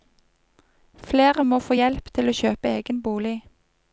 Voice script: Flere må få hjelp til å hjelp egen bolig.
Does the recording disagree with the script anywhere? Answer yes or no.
yes